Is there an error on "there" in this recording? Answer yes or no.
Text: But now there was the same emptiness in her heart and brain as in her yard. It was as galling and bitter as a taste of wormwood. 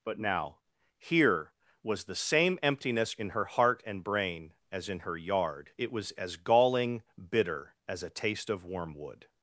yes